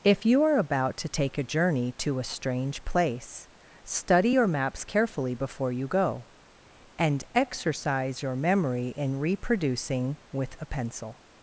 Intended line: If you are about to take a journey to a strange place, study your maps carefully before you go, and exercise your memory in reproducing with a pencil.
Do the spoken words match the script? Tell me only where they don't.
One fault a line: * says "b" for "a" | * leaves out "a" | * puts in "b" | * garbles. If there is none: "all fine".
all fine